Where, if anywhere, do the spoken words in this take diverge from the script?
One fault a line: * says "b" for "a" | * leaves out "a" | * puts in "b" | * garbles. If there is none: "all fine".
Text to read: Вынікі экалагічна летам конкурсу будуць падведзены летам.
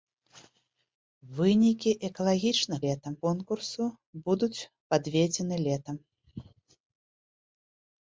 all fine